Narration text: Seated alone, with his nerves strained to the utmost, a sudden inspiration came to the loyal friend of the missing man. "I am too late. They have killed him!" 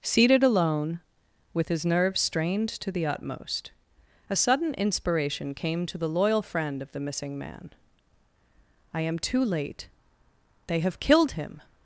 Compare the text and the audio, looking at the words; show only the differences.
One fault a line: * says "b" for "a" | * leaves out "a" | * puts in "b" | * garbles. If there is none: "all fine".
all fine